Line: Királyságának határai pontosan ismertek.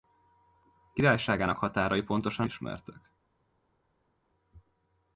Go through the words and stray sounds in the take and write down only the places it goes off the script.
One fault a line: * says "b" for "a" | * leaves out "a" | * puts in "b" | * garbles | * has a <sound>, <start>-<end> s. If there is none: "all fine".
all fine